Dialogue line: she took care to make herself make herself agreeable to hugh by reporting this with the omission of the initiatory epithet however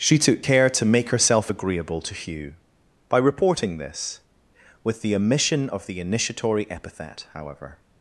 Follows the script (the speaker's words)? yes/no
no